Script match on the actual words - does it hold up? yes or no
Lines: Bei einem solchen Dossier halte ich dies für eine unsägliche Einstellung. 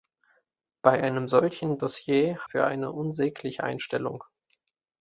no